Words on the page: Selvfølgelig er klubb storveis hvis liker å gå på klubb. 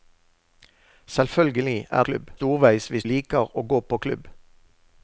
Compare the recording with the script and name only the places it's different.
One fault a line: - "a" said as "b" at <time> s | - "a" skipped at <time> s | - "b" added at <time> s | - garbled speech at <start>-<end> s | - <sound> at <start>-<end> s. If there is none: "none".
none